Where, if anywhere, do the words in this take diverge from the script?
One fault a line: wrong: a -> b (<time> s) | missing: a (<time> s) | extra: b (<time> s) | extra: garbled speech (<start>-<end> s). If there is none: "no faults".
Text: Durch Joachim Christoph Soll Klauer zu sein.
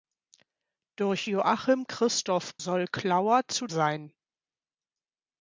no faults